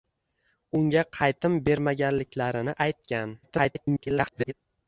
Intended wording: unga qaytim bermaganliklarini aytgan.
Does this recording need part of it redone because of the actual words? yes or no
yes